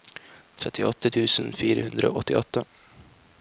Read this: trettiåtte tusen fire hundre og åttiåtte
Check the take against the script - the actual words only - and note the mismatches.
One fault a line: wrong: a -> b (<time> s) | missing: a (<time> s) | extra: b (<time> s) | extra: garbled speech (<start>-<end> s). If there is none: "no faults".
no faults